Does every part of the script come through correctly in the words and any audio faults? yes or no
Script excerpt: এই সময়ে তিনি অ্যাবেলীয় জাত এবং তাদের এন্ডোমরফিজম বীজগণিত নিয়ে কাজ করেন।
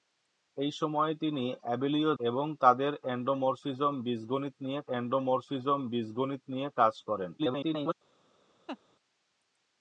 no